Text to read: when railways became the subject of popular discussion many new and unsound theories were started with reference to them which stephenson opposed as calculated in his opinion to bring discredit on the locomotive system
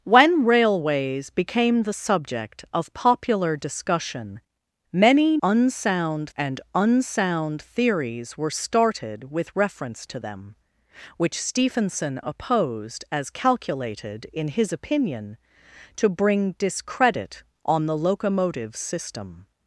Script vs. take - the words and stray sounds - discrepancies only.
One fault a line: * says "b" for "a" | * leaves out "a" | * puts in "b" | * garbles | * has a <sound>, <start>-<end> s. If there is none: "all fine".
* says "unsound" for "new"